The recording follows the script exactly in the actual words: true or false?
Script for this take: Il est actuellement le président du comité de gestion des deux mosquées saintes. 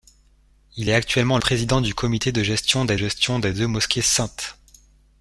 false